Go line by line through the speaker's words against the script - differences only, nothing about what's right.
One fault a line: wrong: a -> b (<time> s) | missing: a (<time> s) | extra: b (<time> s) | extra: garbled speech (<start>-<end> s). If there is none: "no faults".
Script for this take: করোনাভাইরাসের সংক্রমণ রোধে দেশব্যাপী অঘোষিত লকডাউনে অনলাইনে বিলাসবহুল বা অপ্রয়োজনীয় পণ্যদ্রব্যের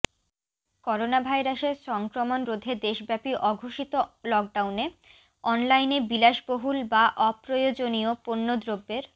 no faults